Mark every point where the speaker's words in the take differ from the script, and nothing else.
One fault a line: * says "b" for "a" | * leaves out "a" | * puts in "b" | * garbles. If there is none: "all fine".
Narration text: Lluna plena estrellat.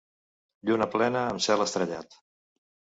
* puts in "amb cel"